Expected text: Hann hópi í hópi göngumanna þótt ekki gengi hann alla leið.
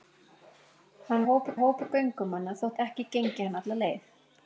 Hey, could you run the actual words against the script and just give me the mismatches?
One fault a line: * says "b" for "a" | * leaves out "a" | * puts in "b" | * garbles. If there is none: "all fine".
all fine